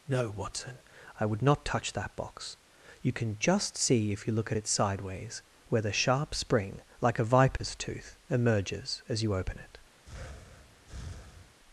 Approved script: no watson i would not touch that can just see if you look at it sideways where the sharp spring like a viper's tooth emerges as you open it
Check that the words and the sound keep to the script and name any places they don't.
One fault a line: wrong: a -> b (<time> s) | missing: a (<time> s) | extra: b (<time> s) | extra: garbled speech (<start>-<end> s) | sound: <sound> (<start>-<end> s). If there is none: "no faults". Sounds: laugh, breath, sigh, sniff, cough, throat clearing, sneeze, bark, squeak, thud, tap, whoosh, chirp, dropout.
extra: box you (2.1 s)
sound: dropout (7.6-7.6 s)
sound: breath (10.0-11.6 s)